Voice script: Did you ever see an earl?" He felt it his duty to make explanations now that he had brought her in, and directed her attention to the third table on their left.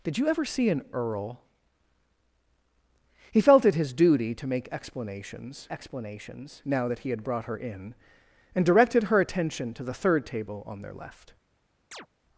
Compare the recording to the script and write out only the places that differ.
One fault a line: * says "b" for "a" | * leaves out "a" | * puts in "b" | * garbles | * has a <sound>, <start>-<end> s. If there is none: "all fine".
* puts in "explanations"
* has a chirp, 11.9-12.1 s